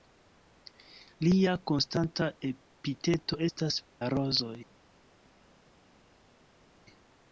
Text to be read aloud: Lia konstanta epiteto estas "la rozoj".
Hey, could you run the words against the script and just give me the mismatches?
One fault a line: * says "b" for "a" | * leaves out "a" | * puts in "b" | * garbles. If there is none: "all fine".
all fine